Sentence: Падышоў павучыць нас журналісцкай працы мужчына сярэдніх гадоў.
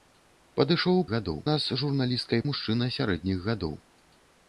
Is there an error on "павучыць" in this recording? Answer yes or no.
yes